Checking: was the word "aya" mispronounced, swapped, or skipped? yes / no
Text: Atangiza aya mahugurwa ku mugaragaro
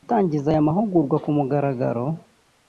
no